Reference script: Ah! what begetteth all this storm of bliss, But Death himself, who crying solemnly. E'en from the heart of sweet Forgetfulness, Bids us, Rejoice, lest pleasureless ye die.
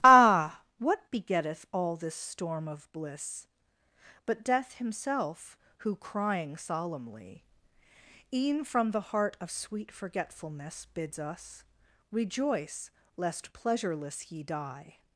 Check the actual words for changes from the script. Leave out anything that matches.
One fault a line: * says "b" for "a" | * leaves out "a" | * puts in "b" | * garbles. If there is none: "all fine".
all fine